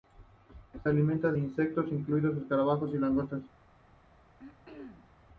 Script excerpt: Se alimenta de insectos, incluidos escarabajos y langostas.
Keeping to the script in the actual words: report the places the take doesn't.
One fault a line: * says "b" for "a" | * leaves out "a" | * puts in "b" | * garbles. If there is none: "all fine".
all fine